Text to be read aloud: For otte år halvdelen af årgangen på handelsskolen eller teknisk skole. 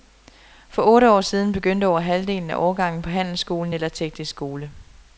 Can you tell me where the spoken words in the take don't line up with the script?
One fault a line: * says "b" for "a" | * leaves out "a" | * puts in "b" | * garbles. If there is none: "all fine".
* puts in "siden begyndte over"